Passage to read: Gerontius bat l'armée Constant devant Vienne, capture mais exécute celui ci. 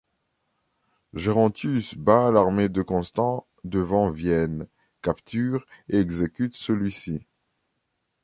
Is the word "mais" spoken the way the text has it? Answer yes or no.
no